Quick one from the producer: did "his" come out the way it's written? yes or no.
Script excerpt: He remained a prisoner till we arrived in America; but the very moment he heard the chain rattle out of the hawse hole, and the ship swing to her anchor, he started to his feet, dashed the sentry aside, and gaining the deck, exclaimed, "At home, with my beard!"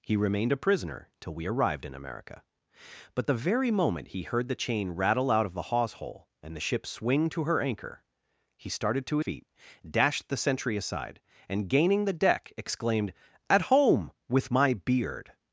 no